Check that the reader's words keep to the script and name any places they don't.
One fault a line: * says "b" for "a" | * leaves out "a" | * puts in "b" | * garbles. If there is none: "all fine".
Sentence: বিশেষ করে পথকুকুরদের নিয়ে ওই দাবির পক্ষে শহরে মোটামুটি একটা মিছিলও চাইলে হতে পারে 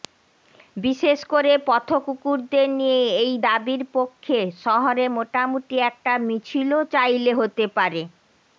* says "এই" for "ওই"